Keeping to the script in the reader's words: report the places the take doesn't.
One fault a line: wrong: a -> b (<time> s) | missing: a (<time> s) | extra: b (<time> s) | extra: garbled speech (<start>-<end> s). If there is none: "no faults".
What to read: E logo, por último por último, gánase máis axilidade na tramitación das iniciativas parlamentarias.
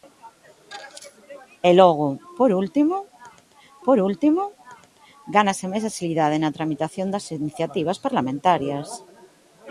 no faults